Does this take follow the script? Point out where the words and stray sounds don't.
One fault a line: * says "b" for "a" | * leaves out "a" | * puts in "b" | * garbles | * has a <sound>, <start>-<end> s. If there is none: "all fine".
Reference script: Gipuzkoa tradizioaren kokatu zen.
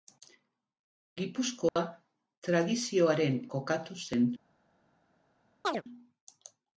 * has a dropout, 1.7-1.8 s
* has a chirp, 5.6-5.8 s